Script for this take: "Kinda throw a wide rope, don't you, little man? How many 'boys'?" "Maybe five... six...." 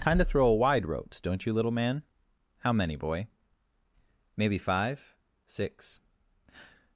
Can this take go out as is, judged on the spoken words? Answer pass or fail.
fail